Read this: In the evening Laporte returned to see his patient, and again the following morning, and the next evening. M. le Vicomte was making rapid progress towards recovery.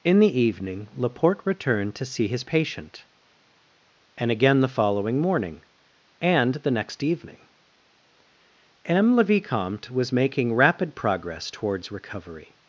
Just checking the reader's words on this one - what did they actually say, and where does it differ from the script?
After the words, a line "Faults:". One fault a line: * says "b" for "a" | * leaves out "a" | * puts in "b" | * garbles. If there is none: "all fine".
In the evening Laporte returned to see his patient, and again the following morning, and the next evening. M. le Vicomte was making rapid progress towards recovery.
Faults:
all fine